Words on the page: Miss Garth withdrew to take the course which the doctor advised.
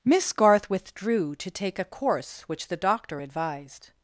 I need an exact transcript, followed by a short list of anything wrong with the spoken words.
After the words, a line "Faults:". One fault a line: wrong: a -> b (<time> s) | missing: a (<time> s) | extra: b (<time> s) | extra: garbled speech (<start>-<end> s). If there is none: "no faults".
Miss Garth withdrew to take a course which the doctor advised.
Faults:
wrong: the -> a (1.8 s)